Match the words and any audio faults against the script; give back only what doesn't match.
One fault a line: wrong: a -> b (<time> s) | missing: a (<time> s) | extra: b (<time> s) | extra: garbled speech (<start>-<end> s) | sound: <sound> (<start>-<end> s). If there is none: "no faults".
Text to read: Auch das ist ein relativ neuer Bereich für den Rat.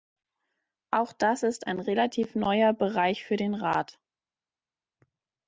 no faults